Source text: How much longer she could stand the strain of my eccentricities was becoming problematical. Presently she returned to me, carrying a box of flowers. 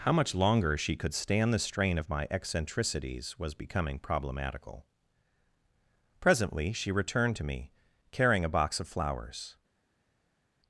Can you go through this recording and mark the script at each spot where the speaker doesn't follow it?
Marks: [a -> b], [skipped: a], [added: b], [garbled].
How much longer she could stand the strain of my eccentricities was becoming problematical. Presently she returned to me, carrying a box of flowers.